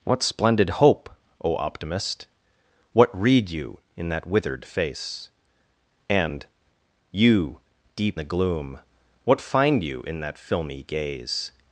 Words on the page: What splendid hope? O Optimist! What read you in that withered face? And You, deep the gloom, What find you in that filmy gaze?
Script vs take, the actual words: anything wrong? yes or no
no